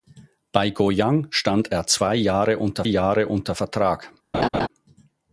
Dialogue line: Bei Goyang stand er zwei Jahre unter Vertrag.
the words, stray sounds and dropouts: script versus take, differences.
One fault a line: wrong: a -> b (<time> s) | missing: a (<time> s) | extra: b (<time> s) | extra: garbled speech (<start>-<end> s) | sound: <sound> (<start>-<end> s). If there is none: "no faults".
extra: Jahre unter (2.8 s)
sound: laugh (4.3-4.7 s)